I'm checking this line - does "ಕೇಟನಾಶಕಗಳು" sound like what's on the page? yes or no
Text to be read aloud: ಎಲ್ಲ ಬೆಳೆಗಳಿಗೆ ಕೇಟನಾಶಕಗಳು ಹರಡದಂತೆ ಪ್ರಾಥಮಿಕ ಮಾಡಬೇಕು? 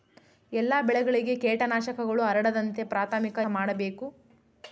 yes